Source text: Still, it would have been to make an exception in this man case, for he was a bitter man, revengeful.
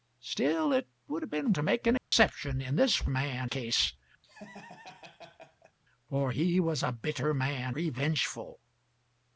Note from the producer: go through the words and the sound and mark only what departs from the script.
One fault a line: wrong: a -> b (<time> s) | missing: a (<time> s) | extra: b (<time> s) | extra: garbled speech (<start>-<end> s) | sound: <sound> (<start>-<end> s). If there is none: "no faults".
sound: dropout (2.0-2.1 s)
sound: laugh (4.2-5.8 s)